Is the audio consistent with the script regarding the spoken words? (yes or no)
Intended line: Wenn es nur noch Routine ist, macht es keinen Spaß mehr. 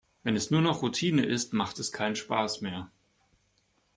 yes